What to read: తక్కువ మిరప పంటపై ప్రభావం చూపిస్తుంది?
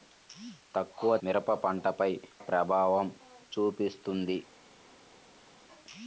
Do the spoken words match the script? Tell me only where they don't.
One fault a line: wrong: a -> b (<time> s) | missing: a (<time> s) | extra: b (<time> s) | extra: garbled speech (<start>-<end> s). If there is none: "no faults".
no faults